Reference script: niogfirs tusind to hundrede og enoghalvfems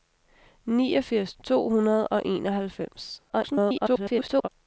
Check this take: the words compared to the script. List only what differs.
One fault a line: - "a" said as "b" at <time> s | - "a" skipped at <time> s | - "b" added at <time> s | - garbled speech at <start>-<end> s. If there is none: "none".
- "tusind" skipped at 1.3 s
- garbled speech at 3.3-4.5 s